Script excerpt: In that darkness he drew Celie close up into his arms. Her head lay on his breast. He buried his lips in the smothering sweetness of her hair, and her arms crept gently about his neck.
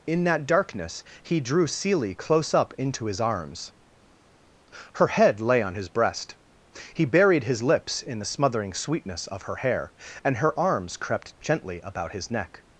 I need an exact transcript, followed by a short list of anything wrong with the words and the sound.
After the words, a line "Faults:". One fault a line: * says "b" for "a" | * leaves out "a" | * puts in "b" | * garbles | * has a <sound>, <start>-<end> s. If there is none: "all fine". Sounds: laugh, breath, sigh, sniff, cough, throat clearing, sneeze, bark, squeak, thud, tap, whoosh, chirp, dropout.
In that darkness he drew Celie close up into his arms. Her head lay on his breast. He buried his lips in the smothering sweetness of her hair, and her arms crept gently about his neck.
Faults:
all fine